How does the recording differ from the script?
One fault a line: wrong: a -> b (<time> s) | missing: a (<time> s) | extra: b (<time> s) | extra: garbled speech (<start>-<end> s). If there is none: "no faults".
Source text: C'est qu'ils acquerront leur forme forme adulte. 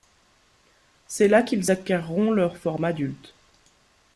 extra: là (1.3 s)
missing: forme (2.9 s)